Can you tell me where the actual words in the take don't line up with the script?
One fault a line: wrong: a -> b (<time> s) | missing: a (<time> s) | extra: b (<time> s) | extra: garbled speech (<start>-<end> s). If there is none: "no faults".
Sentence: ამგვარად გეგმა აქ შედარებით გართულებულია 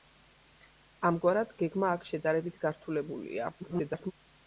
extra: garbled speech (3.6-4.1 s)